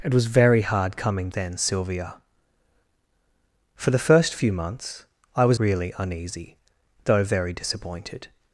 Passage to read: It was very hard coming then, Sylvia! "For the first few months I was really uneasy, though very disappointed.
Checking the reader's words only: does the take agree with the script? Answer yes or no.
yes